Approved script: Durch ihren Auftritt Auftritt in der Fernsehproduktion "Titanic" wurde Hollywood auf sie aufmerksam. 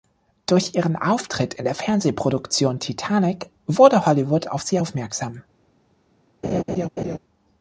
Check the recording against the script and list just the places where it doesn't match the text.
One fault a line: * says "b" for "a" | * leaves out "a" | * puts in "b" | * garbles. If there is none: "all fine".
* leaves out "Auftritt"